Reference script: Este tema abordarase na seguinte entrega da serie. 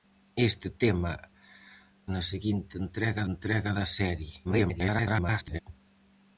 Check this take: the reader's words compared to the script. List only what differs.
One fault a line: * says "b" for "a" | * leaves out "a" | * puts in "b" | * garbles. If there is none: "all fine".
* leaves out "abordarase"
* puts in "entrega"
* garbles